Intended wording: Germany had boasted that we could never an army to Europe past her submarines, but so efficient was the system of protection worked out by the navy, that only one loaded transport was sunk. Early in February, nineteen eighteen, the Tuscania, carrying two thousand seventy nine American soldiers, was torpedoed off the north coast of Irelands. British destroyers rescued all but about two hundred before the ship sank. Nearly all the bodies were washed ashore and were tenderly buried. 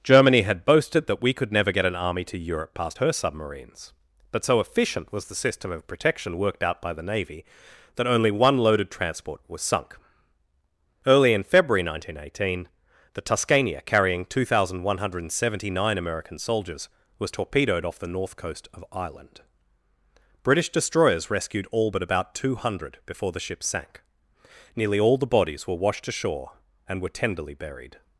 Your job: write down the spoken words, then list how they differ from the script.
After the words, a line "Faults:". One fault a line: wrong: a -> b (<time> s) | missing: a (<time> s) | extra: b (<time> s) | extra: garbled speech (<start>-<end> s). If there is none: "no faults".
Germany had boasted that we could never get an army to Europe past her submarines, but so efficient was the system of protection worked out by the navy, that only one loaded transport was sunk. Early in February, nineteen eighteen, the Tuscania, carrying two thousand one hundred seventy nine American soldiers, was torpedoed off the north coast of Ireland. British destroyers rescued all but about two hundred before the ship sank. Nearly all the bodies were washed ashore and were tenderly buried.
Faults:
extra: get (1.7 s)
extra: one hundred (14.8 s)
wrong: Irelands -> Ireland (18.9 s)